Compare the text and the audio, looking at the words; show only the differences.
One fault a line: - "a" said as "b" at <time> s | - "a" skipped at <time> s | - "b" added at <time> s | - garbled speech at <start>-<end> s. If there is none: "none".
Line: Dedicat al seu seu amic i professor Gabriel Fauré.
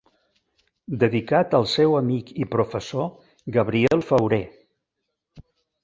- "seu" skipped at 1.9 s